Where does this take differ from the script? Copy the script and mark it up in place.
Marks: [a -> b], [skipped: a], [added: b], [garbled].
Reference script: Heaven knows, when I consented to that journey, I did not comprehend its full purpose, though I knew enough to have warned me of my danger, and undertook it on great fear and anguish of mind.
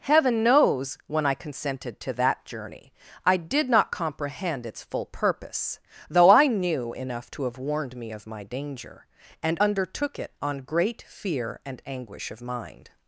Heaven knows, when I consented to that journey, I did not comprehend its full purpose, though I knew enough to have warned me of my danger, and undertook it on great fear and anguish of mind.